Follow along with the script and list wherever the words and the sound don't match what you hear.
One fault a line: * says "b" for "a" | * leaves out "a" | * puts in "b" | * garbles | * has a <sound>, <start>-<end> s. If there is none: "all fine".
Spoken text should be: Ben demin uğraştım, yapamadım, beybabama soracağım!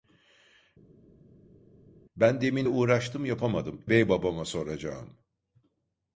all fine